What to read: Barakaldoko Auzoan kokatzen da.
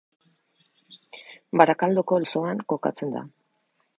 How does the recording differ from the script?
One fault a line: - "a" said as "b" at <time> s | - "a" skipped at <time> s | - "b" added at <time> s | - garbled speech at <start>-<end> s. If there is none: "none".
none